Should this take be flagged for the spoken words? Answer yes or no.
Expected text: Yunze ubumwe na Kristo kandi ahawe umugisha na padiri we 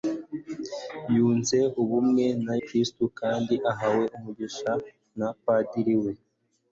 no